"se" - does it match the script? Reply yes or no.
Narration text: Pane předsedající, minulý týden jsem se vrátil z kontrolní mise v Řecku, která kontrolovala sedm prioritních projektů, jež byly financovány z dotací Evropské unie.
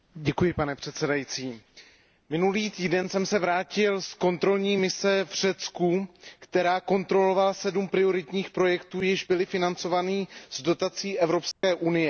yes